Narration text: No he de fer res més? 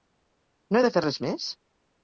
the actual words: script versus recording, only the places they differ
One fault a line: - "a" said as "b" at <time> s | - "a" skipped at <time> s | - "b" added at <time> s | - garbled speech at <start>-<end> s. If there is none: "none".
none